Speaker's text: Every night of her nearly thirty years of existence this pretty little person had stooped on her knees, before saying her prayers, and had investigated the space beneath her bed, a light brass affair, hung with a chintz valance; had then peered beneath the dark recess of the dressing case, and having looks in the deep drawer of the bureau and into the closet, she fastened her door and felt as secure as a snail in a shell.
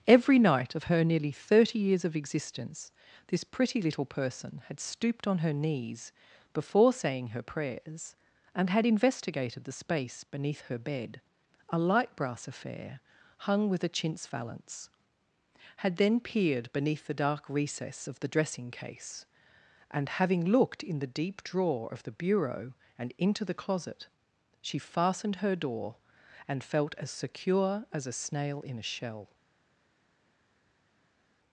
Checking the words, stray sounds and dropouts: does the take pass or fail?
fail